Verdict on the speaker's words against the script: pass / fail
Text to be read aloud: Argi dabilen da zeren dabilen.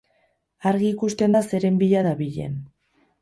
fail